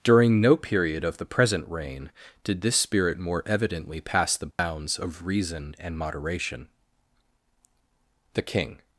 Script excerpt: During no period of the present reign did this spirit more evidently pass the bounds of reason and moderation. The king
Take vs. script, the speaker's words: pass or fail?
pass